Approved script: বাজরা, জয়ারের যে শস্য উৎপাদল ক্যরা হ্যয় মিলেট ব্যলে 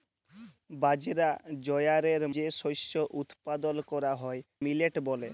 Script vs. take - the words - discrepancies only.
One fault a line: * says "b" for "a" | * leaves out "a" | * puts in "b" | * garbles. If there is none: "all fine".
all fine